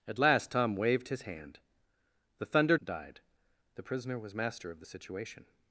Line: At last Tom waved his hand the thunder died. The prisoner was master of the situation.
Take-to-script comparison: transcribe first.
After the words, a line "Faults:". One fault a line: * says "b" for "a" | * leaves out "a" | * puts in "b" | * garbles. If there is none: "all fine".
At last Tom waved his hand the thunder died. The prisoner was master of the situation.
Faults:
all fine